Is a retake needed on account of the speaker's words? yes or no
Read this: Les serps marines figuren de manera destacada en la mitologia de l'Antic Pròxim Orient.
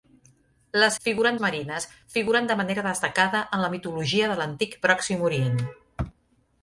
yes